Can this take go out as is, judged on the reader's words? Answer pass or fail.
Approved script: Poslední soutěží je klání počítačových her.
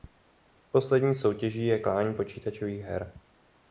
pass